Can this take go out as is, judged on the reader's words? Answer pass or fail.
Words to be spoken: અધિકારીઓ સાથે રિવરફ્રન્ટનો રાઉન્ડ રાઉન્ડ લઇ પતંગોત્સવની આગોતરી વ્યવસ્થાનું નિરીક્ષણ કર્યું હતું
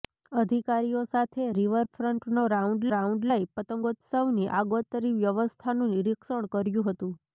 pass